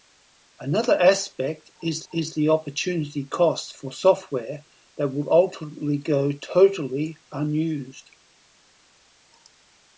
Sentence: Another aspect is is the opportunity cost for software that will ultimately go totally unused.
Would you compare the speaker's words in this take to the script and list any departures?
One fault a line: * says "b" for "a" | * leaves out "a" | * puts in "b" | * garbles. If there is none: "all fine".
all fine